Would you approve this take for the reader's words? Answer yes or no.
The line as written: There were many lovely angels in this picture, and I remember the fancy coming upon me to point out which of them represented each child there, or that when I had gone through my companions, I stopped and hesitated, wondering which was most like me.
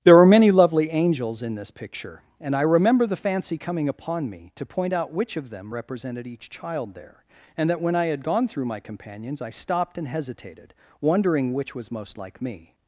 no